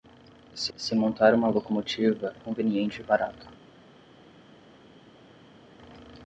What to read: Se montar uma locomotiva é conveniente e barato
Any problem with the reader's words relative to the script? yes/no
yes